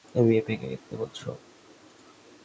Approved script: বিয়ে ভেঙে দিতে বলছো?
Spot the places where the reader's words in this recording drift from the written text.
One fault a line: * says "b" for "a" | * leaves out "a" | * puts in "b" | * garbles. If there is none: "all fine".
all fine